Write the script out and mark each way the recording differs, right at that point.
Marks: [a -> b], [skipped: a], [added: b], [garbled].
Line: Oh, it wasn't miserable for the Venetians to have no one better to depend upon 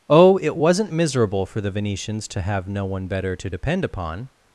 Oh, it wasn't miserable for the Venetians to have no one better to depend upon